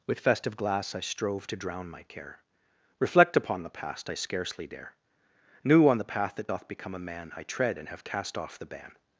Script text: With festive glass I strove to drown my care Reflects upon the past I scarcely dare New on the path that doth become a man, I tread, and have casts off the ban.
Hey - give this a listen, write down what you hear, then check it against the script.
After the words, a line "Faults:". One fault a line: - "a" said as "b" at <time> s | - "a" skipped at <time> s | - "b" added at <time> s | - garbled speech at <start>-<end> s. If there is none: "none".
With festive glass I strove to drown my care Reflect upon the past I scarcely dare New on the path that doth become a man, I tread, and have cast off the ban.
Faults:
- "Reflects" said as "Reflect" at 3.0 s
- "casts" said as "cast" at 8.0 s